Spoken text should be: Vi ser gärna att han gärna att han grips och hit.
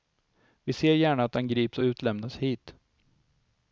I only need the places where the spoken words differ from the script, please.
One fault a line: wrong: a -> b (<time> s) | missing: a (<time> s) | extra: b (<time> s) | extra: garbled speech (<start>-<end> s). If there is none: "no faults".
missing: gärna att han (1.5 s)
extra: utlämnas (1.8 s)